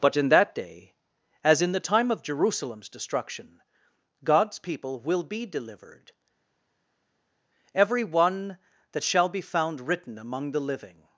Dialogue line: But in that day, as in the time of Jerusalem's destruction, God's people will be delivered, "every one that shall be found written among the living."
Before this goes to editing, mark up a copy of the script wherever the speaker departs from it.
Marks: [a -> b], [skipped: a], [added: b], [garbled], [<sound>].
But in that day, as in the time of Jerusalem's destruction, God's people will be delivered, "every one that shall be found written among the living."